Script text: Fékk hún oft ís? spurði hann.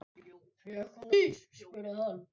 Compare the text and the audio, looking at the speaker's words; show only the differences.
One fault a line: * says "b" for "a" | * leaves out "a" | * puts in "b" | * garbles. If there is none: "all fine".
* leaves out "oft"